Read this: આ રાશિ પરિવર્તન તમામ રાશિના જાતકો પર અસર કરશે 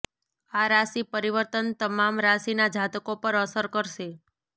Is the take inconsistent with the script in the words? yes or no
no